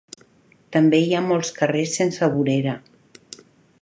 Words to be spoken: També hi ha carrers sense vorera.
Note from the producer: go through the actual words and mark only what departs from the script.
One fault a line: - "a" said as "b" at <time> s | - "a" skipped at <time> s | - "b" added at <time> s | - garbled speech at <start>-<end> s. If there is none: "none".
- "molts" added at 1.2 s